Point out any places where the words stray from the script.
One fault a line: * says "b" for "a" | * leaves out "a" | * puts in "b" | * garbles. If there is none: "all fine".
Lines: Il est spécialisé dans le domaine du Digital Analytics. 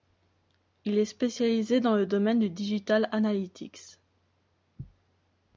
all fine